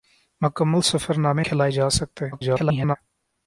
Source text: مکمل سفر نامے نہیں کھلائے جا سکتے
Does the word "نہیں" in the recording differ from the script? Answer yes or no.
yes